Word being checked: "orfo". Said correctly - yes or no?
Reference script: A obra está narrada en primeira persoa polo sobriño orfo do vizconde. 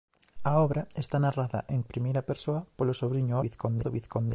no